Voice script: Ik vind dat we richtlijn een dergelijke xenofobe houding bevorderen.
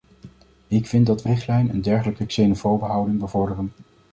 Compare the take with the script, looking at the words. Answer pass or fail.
pass